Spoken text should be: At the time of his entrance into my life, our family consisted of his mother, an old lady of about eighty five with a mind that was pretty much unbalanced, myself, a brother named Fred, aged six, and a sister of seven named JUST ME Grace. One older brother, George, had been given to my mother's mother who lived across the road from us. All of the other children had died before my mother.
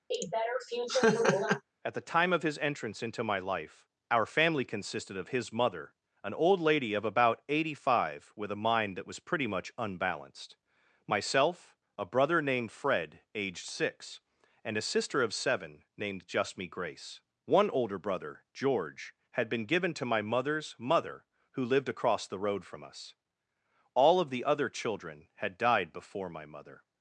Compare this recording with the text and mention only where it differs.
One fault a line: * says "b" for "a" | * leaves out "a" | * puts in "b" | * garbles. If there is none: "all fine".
all fine